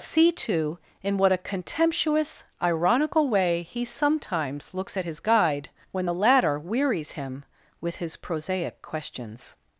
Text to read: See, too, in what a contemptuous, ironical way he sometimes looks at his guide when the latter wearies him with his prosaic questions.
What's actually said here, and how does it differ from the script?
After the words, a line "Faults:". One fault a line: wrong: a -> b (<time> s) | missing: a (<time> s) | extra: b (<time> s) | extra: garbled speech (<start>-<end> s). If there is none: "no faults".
See, too, in what a contemptuous, ironical way he sometimes looks at his guide when the latter wearies him with his prosaic questions.
Faults:
no faults